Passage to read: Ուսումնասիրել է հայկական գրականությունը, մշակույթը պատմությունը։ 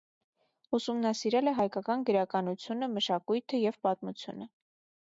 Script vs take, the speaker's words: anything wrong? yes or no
yes